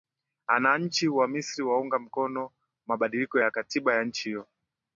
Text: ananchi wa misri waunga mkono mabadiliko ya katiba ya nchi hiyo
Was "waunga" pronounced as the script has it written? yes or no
yes